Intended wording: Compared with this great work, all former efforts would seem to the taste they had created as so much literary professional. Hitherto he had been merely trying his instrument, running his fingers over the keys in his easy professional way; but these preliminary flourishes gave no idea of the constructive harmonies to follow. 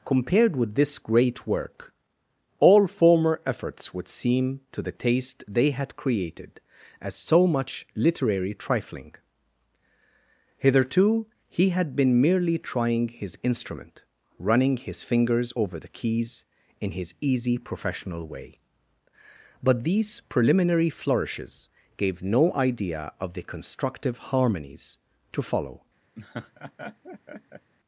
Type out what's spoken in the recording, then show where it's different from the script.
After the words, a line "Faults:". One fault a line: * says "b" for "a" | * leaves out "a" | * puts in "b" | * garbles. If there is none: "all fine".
Compared with this great work, all former efforts would seem to the taste they had created as so much literary trifling. Hitherto he had been merely trying his instrument, running his fingers over the keys in his easy professional way; but these preliminary flourishes gave no idea of the constructive harmonies to follow.
Faults:
* says "trifling" for "professional"